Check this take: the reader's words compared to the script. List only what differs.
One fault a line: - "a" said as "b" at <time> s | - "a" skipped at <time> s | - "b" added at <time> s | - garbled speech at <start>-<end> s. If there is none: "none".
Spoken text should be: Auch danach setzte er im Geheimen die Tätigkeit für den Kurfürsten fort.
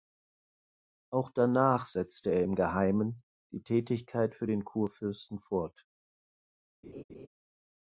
none